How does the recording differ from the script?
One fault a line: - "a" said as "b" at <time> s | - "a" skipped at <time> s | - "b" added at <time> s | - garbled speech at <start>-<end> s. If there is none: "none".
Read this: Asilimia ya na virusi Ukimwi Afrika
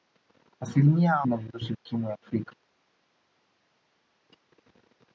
none